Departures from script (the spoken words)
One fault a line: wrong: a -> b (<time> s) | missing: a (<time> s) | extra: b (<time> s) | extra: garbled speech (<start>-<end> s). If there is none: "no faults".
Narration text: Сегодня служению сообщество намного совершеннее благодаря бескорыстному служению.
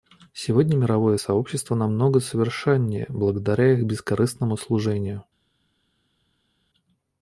wrong: служению -> мировое (0.8 s)
extra: их (3.7 s)